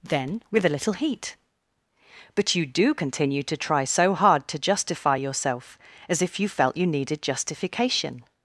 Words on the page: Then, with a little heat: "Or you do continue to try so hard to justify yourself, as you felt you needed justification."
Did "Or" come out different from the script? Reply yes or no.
yes